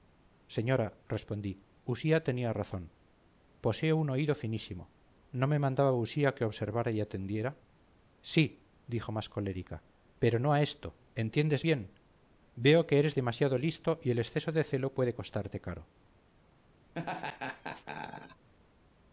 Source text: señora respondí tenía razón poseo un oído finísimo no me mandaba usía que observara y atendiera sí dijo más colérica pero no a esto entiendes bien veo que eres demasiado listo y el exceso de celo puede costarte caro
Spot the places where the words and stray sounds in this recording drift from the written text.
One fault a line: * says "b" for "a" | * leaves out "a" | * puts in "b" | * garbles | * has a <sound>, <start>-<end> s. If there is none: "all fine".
* puts in "usía"
* has a laugh, 16.9-18.5 s